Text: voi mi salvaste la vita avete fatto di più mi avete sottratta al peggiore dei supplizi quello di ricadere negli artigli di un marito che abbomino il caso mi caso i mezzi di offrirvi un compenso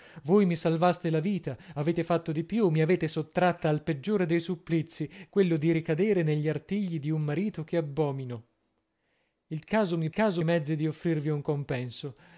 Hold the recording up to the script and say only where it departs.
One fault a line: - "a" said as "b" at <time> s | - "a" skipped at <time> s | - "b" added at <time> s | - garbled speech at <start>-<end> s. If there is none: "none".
none